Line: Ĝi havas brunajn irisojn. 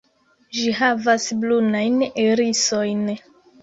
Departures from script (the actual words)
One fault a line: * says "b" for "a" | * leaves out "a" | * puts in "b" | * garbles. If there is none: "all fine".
all fine